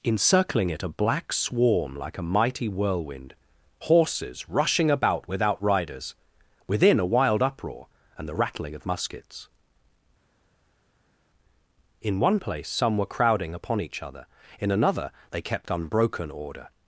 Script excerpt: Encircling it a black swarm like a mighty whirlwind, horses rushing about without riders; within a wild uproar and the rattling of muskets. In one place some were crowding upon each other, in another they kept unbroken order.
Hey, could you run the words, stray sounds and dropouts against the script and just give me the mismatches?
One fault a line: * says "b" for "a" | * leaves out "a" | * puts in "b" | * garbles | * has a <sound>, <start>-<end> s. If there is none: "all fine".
all fine